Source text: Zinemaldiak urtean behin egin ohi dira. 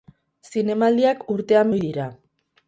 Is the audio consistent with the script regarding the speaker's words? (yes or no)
no